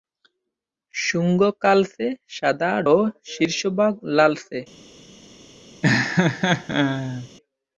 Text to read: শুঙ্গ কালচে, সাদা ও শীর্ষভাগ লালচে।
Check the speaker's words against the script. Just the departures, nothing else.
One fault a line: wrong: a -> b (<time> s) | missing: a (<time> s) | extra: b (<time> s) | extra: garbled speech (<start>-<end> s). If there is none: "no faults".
no faults